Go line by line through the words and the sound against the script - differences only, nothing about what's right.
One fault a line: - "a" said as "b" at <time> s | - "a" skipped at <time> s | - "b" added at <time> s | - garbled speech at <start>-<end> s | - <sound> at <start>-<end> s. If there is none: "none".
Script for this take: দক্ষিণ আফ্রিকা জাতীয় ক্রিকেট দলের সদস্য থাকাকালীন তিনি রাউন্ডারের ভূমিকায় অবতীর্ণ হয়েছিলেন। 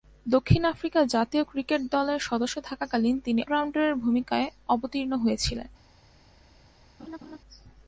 - laugh at 7.0-7.4 s